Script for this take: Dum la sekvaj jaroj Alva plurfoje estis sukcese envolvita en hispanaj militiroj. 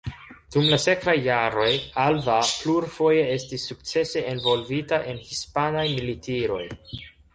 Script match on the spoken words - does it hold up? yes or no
yes